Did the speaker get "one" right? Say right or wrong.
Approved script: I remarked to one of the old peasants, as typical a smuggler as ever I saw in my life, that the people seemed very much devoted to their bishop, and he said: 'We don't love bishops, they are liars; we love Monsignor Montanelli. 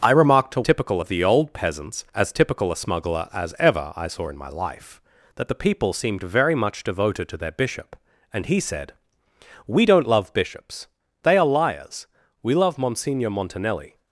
wrong